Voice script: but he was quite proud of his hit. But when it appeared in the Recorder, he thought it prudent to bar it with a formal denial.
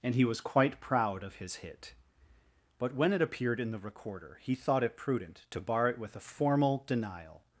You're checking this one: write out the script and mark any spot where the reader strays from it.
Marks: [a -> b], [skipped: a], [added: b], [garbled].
[but -> and] he was quite proud of his hit. But when it appeared in the Recorder, he thought it prudent to bar it with a formal denial.